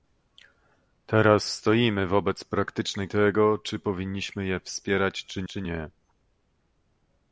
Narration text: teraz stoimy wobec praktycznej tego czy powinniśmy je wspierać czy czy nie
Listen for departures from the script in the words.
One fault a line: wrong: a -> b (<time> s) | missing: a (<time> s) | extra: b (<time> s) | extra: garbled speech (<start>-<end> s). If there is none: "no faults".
no faults